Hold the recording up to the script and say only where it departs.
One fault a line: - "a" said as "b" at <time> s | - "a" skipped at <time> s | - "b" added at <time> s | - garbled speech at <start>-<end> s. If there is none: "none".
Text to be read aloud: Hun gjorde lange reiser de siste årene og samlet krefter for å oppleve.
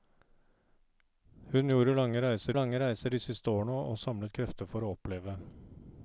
- "lange reiser" added at 2.6 s